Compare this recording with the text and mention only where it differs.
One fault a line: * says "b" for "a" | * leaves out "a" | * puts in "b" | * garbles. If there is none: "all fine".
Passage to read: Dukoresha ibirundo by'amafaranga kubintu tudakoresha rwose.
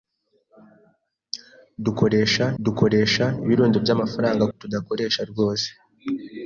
* puts in "dukoresha"
* leaves out "kubintu"